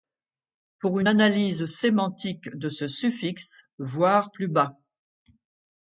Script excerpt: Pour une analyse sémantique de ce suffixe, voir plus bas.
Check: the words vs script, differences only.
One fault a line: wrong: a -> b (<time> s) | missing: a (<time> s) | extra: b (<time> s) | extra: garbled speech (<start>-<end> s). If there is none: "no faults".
no faults